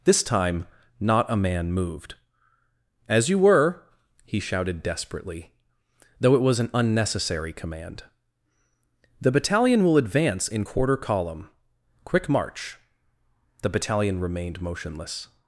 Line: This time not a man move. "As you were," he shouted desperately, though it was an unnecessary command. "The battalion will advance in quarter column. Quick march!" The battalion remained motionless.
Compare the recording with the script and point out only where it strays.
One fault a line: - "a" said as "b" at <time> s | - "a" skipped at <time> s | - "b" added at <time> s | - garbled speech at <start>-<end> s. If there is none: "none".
- "move" said as "moved" at 1.7 s